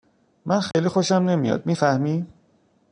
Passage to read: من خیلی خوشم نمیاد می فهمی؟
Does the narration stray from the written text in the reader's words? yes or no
no